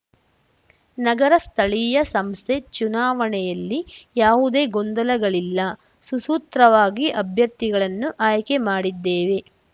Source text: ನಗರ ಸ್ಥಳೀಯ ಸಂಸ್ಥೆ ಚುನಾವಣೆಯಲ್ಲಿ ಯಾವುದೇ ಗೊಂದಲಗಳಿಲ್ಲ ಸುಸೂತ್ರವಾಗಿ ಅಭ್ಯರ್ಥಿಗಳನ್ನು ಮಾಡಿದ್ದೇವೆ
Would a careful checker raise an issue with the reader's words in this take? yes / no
yes